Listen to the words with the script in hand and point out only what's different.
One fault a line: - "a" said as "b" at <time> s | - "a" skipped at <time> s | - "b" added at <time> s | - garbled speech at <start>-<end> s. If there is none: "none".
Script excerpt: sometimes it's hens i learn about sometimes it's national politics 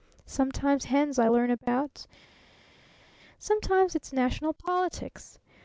- "it's" skipped at 0.9 s